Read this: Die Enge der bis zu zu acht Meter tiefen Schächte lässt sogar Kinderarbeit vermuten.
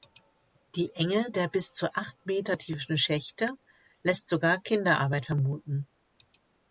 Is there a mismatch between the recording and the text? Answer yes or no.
yes